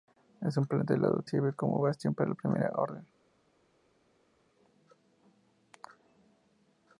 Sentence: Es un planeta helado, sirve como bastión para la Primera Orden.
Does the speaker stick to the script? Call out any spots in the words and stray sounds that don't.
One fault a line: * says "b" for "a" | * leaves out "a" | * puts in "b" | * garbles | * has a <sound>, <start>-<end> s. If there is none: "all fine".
all fine